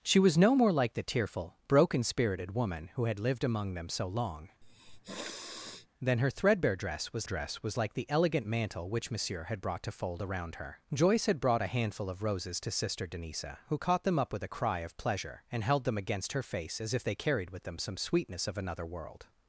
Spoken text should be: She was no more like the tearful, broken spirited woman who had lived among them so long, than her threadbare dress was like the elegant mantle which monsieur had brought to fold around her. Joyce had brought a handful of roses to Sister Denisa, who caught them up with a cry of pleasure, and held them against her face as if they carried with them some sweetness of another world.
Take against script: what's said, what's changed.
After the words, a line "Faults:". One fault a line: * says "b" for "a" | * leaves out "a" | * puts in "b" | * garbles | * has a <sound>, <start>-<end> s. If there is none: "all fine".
She was no more like the tearful, broken spirited woman who had lived among them so long, than her threadbare dress was dress was like the elegant mantle which monsieur had brought to fold around her. Joyce had brought a handful of roses to Sister Denisa, who caught them up with a cry of pleasure, and held them against her face as if they carried with them some sweetness of another world.
Faults:
* has a sniff, 4.6-5.9 s
* puts in "dress was"